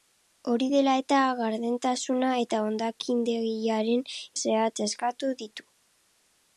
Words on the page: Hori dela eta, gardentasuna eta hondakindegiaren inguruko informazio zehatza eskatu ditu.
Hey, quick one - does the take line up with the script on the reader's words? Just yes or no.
no